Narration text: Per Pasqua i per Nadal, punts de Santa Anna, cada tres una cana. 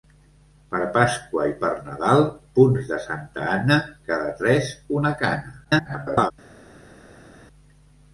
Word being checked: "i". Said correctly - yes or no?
yes